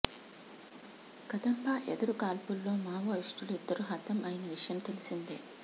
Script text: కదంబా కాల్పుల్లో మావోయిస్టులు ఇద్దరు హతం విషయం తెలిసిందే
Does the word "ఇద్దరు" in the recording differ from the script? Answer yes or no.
no